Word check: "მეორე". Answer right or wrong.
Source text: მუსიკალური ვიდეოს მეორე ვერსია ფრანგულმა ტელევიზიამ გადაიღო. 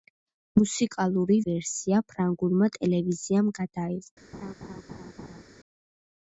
wrong